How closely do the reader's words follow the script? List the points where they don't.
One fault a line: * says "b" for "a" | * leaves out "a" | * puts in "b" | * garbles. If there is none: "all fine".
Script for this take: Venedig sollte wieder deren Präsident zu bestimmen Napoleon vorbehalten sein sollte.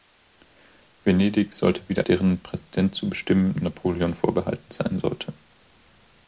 all fine